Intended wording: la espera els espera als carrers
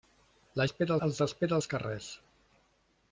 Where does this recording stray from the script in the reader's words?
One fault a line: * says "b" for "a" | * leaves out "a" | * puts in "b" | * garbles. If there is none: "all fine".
all fine